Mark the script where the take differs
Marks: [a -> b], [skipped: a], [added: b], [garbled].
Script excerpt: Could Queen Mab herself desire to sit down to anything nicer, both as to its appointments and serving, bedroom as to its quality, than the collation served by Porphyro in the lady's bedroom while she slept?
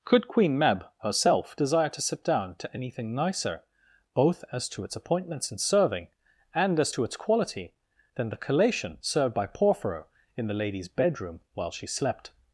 Could Queen Mab herself desire to sit down to anything nicer, both as to its appointments and serving, [bedroom -> and] as to its quality, than the collation served by Porphyro in the lady's bedroom while she slept?